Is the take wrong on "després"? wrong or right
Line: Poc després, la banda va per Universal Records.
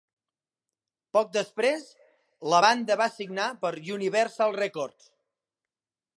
right